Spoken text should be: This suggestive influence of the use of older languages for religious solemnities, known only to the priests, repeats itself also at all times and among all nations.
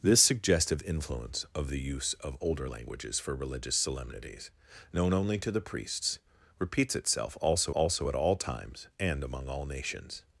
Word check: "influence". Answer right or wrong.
right